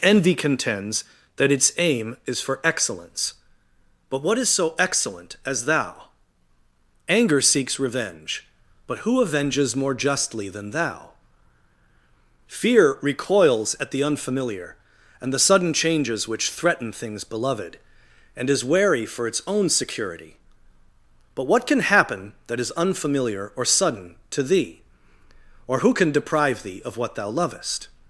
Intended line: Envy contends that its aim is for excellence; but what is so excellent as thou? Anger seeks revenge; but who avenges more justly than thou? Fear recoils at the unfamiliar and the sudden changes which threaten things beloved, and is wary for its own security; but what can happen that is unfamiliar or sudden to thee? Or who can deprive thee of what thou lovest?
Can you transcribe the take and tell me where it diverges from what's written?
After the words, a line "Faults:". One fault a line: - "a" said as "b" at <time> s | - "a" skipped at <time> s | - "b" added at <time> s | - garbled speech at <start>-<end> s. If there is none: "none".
Envy contends that its aim is for excellence; but what is so excellent as thou? Anger seeks revenge; but who avenges more justly than thou? Fear recoils at the unfamiliar and the sudden changes which threaten things beloved, and is wary for its own security; but what can happen that is unfamiliar or sudden to thee? Or who can deprive thee of what thou lovest?
Faults:
none